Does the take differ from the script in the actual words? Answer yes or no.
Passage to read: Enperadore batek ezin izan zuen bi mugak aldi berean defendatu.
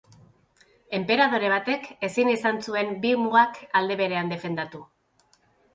no